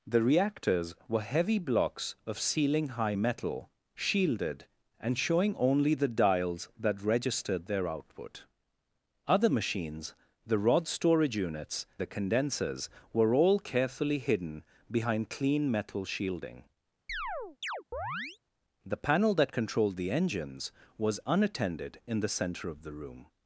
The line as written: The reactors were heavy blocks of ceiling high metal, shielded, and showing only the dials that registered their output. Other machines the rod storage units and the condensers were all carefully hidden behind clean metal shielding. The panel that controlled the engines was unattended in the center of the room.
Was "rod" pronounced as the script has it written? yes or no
yes